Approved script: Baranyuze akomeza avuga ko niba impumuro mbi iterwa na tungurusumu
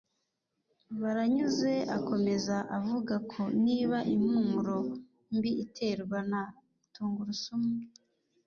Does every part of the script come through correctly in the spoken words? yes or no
yes